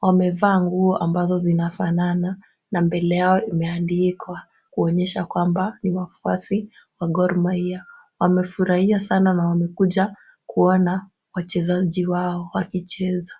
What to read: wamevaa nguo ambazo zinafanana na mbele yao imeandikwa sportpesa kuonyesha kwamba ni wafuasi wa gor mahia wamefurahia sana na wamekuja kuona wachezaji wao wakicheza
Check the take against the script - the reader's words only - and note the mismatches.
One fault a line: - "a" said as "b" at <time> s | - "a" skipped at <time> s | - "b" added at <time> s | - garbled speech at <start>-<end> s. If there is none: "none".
- "sportpesa" skipped at 4.4 s